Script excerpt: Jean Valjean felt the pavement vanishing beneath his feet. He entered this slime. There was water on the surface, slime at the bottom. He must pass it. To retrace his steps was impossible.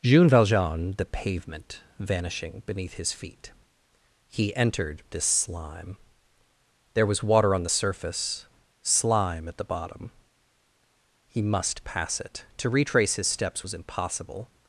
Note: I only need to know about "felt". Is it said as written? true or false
false